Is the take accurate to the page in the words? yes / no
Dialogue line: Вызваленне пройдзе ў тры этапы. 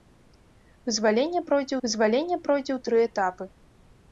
no